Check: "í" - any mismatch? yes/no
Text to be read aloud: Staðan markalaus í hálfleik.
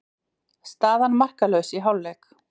no